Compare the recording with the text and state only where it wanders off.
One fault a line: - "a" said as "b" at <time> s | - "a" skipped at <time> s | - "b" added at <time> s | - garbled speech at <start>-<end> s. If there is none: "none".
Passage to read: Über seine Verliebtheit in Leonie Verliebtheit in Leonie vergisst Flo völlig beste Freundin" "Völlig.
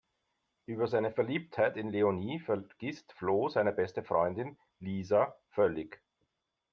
- "Verliebtheit in Leonie" skipped at 2.4 s
- "völlig" said as "seine" at 3.5 s
- "Lisa" added at 4.8 s